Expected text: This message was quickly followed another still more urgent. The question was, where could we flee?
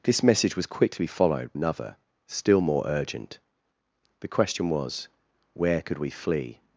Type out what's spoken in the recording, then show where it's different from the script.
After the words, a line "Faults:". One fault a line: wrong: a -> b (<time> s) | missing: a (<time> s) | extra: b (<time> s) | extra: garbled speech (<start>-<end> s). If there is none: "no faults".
This message was quickly followed another still more urgent. The question was, where could we flee?
Faults:
no faults